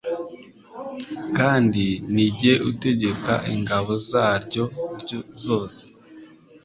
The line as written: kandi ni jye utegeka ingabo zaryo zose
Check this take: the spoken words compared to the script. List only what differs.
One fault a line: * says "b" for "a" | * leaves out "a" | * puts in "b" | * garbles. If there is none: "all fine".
all fine